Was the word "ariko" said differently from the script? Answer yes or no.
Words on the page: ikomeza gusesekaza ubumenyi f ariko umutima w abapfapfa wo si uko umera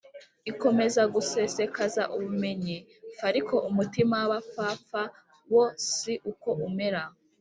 no